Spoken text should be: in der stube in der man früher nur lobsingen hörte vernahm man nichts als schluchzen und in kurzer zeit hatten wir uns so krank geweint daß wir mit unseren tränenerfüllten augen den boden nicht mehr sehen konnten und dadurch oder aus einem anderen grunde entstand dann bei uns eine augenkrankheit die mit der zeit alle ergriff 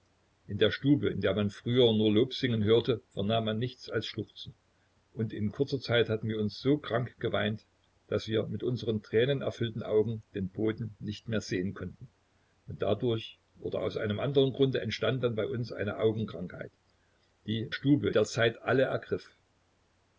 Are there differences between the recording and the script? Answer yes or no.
yes